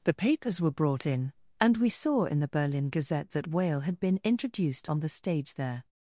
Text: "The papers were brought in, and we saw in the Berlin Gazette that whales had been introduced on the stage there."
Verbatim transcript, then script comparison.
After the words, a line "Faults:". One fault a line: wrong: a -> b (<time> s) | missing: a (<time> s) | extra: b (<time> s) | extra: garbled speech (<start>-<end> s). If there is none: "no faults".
"The papers were brought in, and we saw in the Berlin Gazette that whale had been introduced on the stage there."
Faults:
wrong: whales -> whale (3.5 s)